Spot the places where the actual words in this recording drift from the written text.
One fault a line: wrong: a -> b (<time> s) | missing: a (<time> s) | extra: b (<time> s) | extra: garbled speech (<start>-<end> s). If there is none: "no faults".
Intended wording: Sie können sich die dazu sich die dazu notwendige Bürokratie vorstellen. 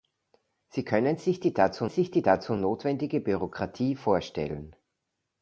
no faults